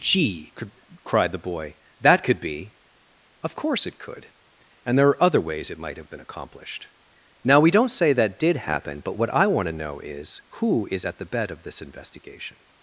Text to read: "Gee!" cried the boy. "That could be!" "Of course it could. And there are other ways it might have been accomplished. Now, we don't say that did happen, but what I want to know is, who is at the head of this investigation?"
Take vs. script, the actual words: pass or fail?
fail